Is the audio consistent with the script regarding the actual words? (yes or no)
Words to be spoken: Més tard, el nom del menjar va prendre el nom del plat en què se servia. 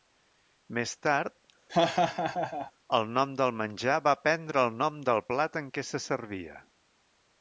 yes